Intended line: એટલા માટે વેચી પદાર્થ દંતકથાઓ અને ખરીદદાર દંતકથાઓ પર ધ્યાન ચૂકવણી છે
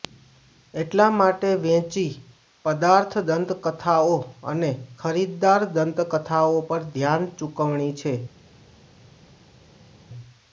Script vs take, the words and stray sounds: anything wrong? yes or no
no